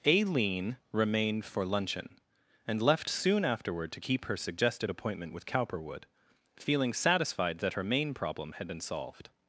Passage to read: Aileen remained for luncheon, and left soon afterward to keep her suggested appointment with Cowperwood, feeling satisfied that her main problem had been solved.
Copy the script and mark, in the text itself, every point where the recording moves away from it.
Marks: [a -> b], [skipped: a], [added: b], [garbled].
Aileen remained for luncheon, and left soon afterward to keep her suggested appointment with Cowperwood, feeling satisfied that her main problem had been solved.